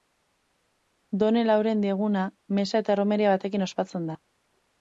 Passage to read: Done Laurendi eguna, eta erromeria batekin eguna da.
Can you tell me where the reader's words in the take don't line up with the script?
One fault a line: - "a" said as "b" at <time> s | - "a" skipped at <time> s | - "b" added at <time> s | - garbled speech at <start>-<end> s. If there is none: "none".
- "meza" added at 2.6 s
- "eguna" said as "ospatzen" at 3.7 s